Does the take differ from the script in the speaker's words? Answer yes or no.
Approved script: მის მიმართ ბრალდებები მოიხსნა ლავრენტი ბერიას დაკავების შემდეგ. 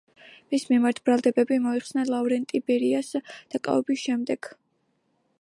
no